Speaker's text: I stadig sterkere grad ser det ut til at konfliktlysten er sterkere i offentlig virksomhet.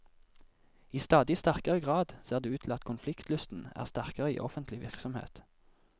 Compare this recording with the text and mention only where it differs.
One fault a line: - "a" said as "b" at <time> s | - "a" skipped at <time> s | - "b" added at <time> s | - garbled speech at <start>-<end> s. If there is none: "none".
none